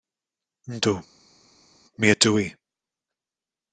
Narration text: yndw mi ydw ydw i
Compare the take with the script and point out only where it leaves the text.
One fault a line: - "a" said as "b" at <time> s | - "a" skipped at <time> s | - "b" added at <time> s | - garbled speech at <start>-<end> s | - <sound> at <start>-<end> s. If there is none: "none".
- "ydw" skipped at 2.3 s